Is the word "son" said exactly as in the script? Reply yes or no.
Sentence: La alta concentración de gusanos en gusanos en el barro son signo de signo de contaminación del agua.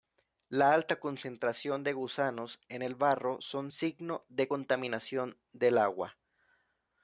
yes